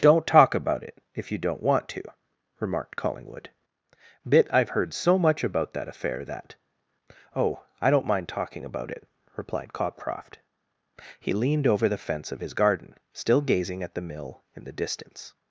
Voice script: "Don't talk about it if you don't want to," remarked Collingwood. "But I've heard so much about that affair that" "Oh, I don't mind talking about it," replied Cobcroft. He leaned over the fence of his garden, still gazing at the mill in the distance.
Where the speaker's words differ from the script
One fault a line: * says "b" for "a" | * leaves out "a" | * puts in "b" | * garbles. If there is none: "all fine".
* says "Bit" for "But"